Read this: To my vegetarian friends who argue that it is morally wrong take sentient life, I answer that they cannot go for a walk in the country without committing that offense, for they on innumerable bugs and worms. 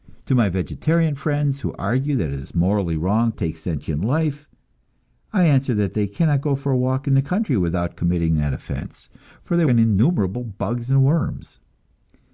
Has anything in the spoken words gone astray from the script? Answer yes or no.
no